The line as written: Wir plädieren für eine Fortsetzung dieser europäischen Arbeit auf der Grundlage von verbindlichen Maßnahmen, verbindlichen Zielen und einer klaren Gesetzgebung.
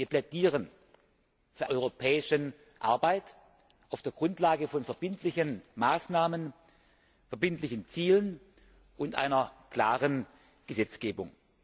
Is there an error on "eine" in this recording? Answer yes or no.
yes